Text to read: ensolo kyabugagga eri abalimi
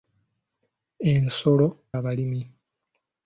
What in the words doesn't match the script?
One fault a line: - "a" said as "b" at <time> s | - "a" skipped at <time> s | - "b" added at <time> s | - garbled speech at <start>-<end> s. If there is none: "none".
- "kyabugagga eri" skipped at 1.7 s